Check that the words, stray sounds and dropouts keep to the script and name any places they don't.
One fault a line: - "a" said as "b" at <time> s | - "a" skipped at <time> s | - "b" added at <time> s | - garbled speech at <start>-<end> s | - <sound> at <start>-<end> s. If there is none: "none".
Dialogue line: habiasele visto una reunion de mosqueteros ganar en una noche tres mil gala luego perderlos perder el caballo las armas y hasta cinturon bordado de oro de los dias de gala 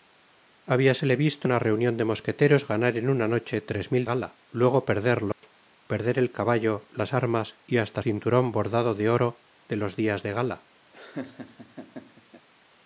- dropout at 5.3-5.4 s
- laugh at 10.9-12.5 s